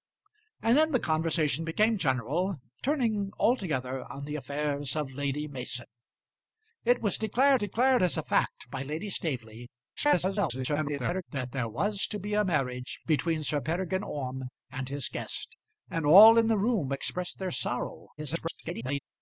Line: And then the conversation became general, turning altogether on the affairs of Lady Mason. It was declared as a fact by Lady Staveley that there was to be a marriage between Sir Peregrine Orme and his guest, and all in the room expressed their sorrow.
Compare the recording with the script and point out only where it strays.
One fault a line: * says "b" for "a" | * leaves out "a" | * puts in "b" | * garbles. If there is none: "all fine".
* puts in "declared"
* garbles
* garbles